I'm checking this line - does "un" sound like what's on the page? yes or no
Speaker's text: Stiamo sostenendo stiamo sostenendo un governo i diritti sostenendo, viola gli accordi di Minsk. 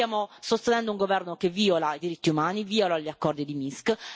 no